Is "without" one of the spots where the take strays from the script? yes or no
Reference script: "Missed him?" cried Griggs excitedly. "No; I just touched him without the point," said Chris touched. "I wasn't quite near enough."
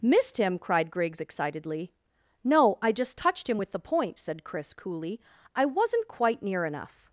yes